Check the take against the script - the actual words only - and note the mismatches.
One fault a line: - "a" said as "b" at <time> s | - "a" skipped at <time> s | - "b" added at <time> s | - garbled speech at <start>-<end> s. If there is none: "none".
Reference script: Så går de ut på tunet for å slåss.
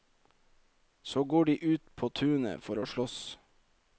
none